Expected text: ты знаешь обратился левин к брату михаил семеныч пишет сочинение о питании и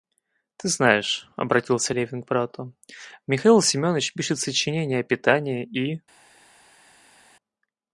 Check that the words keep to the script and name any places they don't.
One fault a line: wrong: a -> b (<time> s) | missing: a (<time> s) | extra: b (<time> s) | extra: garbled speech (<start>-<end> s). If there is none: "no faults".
no faults